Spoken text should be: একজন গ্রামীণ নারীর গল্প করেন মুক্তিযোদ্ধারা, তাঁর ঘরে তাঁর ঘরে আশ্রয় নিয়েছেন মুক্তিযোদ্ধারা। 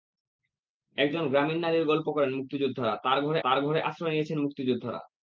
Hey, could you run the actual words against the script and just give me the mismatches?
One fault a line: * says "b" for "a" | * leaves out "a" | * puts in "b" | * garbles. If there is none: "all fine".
all fine